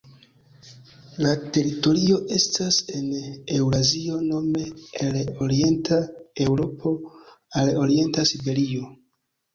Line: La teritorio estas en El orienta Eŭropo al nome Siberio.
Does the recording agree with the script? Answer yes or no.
no